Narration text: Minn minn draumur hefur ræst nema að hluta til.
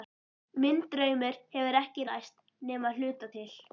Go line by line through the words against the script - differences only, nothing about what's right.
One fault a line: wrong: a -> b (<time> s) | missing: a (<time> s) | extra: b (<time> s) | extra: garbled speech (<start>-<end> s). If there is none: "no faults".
missing: minn (0.8 s)
extra: ekki (1.8 s)